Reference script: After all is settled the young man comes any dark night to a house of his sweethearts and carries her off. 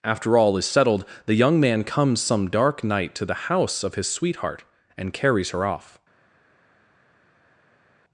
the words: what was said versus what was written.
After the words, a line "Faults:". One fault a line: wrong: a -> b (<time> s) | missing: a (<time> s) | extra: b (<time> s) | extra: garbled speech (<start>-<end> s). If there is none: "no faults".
After all is settled the young man comes some dark night to the house of his sweetheart and carries her off.
Faults:
wrong: any -> some (2.2 s)
wrong: a -> the (3.2 s)
wrong: sweethearts -> sweetheart (4.1 s)